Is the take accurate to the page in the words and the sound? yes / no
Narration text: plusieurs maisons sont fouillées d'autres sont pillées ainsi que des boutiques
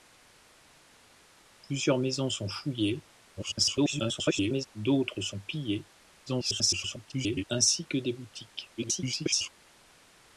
no